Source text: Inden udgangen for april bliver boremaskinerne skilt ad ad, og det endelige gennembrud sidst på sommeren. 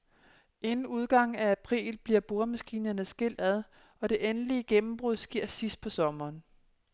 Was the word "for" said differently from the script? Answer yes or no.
yes